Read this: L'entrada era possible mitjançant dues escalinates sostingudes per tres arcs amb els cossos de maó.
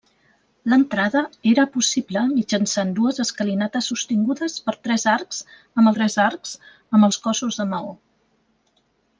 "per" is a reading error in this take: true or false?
false